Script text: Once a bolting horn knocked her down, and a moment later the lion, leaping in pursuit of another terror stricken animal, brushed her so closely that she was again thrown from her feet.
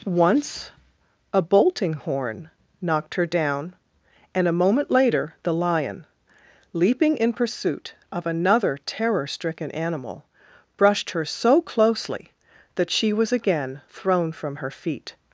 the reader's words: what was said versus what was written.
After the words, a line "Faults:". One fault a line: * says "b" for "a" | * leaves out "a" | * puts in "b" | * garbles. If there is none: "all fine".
Once a bolting horn knocked her down, and a moment later the lion, leaping in pursuit of another terror stricken animal, brushed her so closely that she was again thrown from her feet.
Faults:
all fine